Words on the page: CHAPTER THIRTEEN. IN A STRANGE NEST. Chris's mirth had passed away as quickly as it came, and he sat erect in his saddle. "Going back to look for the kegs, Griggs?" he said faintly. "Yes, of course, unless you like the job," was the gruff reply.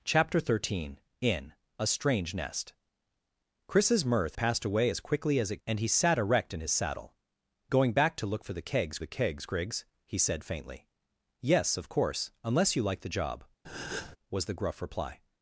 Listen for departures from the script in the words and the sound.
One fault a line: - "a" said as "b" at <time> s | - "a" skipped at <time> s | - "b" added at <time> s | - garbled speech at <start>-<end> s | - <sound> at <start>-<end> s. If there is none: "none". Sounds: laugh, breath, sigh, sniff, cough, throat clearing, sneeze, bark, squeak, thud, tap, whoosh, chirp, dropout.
- "had" skipped at 4.4 s
- "came" skipped at 5.6 s
- "the kegs" added at 9.0 s
- breath at 13.6-14.2 s